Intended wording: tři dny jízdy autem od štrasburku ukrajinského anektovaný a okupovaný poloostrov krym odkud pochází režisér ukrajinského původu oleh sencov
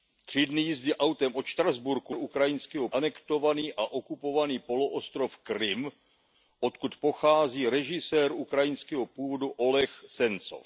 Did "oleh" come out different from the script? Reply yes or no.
no